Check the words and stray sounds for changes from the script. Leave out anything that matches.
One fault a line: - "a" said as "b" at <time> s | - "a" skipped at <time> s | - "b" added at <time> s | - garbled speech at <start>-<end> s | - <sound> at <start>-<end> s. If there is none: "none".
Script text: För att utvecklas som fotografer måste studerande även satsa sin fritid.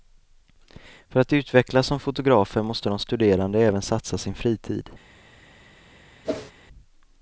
- "de" added at 2.9 s
- whoosh at 6.2-6.5 s